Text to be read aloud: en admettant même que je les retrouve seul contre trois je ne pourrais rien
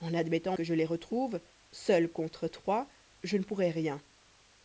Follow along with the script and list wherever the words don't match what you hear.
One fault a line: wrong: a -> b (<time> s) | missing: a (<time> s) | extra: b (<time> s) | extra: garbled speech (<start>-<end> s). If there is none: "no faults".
missing: même (0.6 s)